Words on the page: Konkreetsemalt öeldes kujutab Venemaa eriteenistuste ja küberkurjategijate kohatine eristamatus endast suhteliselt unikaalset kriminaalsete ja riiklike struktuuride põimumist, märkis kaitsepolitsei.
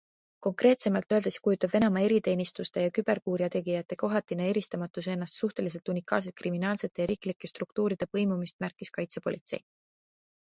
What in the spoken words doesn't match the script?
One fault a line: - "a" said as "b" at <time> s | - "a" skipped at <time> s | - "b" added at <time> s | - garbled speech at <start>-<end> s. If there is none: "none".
none